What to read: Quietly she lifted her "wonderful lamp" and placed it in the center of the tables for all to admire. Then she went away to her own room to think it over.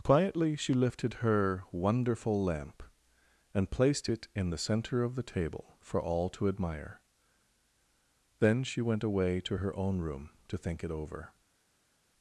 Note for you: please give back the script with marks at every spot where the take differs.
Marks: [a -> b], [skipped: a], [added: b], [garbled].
Quietly she lifted her "wonderful lamp" and placed it in the center of the [tables -> table] for all to admire. Then she went away to her own room to think it over.